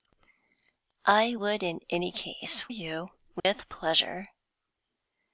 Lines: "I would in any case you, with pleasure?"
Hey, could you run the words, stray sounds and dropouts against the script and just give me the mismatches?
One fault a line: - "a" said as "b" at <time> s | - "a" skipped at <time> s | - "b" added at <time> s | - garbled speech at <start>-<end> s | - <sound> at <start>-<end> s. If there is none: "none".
- dropout at 3.4-3.4 s